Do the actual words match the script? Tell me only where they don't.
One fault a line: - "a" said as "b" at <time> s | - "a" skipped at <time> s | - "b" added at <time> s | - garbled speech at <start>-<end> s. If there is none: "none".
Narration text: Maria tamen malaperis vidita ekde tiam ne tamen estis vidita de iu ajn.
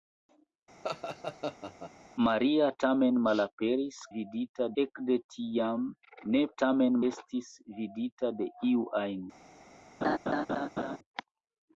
none